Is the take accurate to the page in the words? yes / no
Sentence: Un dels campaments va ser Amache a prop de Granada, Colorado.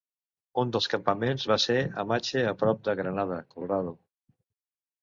yes